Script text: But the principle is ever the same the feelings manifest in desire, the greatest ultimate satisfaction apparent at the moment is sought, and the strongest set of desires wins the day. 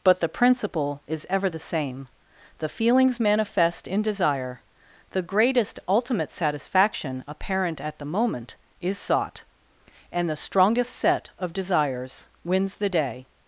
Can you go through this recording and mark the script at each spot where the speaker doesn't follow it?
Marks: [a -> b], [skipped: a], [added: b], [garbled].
But the principle is ever the same the feelings manifest in desire, the greatest ultimate satisfaction apparent at the moment is sought, and the strongest set of desires wins the day.